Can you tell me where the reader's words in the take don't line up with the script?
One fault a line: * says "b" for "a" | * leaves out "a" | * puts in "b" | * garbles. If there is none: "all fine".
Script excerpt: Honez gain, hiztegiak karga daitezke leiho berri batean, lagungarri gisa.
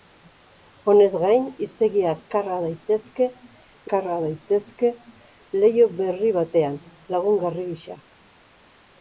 * puts in "karga daitezke"